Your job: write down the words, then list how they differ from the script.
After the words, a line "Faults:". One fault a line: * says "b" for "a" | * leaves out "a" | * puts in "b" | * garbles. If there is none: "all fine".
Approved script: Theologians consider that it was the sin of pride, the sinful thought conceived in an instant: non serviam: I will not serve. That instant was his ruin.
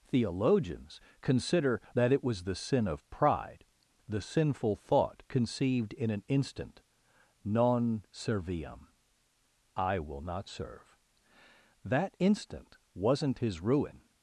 Theologians consider that it was the sin of pride, the sinful thought conceived in an instant: non serviam: I will not serve. That instant wasn't his ruin.
Faults:
* says "wasn't" for "was"